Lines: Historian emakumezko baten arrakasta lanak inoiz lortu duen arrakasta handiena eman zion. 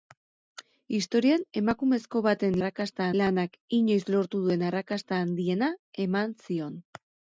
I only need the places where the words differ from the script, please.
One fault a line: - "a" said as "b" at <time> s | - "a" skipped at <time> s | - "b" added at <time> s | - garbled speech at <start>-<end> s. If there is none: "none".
none